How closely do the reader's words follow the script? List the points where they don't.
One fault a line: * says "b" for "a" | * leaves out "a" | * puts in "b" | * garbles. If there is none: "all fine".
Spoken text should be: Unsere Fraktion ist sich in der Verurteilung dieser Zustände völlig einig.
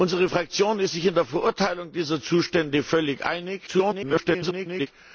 * garbles